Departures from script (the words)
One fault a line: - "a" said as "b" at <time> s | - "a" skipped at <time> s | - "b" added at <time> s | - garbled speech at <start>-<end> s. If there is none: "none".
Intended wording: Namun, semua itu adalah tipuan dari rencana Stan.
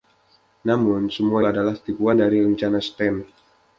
- "itu" skipped at 1.4 s